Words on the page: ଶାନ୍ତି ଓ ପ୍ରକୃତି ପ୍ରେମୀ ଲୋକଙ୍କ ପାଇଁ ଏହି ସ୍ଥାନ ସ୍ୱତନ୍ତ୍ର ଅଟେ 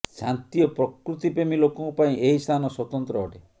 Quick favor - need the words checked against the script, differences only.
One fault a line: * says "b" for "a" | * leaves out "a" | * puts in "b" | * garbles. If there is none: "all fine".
all fine